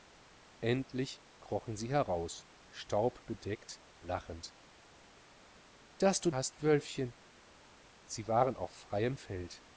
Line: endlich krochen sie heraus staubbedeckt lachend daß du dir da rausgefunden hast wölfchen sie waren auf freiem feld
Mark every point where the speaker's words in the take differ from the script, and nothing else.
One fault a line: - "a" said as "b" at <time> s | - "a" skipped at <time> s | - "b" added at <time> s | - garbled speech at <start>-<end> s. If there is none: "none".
- "dir da rausgefunden" skipped at 6.3 s